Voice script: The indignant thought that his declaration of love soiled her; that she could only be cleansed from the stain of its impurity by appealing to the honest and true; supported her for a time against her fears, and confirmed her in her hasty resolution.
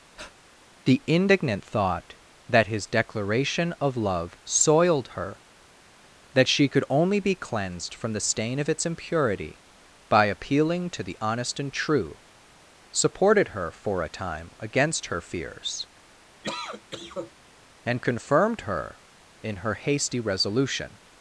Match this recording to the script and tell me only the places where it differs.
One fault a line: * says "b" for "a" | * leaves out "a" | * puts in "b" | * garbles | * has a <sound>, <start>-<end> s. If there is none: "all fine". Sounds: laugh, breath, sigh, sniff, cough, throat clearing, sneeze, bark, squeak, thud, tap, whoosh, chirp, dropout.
* has a breath, 0.2-0.4 s
* has a cough, 16.4-17.3 s